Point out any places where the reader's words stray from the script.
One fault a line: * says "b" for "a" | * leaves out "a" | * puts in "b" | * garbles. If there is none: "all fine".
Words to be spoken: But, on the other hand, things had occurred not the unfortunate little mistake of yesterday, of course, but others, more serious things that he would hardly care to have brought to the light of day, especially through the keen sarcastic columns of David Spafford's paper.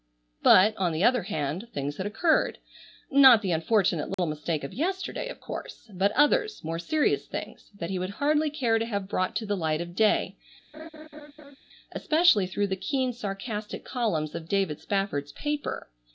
all fine